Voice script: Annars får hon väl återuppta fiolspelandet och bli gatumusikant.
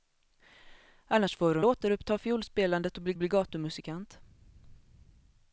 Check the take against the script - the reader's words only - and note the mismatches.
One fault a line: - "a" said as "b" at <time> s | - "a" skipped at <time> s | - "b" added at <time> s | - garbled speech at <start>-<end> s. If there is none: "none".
- "väl" skipped at 1.6 s
- "bli" added at 3.2 s